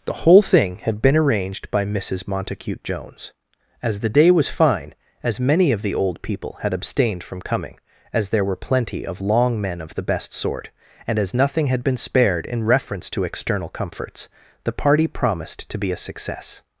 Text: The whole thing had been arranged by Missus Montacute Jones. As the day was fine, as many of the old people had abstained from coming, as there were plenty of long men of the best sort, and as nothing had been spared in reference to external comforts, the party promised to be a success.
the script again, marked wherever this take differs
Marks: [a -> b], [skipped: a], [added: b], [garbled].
The whole thing had been arranged by Missus Montacute Jones. As the day was fine, as many of the old people had abstained from coming, as there were plenty of long men of the best sort, and as nothing had been spared in reference to external comforts, the party promised to be a success.